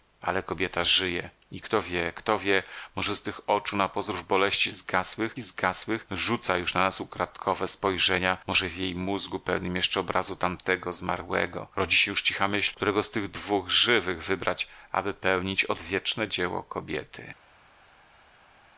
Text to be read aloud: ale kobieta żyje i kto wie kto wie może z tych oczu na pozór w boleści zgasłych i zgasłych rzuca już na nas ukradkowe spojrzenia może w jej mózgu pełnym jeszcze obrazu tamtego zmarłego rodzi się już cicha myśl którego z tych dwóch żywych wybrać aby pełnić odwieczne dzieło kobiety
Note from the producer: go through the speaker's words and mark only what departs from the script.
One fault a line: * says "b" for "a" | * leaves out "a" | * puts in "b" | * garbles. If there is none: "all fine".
all fine